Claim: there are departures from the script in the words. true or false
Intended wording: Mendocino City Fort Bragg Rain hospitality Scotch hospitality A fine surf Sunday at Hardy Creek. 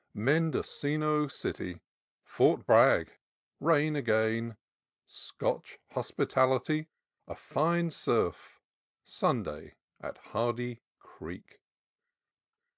true